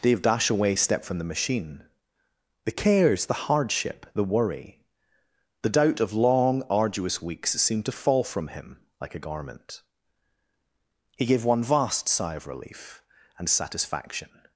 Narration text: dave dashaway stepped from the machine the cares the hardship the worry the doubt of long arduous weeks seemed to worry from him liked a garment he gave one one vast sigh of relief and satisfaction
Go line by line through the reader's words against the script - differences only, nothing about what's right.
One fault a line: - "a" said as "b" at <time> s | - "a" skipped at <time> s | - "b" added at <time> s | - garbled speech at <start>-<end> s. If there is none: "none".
- "worry" said as "fall" at 7.9 s
- "liked" said as "like" at 9.0 s
- "one" skipped at 11.6 s